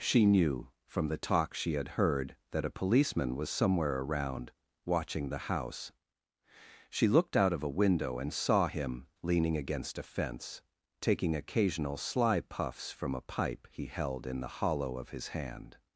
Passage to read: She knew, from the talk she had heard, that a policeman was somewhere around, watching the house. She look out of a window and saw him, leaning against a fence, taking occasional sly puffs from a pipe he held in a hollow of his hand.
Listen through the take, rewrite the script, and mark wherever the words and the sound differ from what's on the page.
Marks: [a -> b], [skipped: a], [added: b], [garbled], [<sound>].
She knew, from the talk she had heard, that a policeman was somewhere around, watching the house. She [look -> looked] out of a window and saw him, leaning against a fence, taking occasional sly puffs from a pipe he held in [a -> the] hollow of his hand.